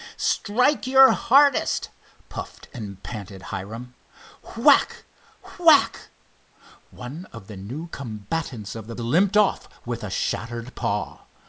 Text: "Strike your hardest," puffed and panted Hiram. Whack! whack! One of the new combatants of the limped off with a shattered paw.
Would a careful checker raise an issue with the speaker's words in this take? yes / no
no